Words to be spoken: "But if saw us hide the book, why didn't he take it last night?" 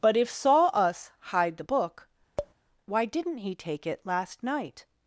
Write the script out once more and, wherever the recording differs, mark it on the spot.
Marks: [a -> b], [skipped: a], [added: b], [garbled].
"But if saw us hide the book, why didn't he take it last night?"